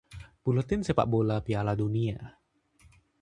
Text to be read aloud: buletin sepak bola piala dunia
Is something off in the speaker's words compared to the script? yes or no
no